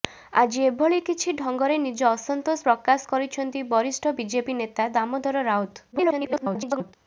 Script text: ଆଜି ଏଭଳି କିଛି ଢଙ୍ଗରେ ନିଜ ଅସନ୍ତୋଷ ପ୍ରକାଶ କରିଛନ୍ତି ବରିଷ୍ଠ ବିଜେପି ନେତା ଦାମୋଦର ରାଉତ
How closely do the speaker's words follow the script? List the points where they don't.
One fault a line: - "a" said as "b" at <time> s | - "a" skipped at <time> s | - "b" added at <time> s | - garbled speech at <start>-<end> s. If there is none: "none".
- garbled speech at 5.9-6.9 s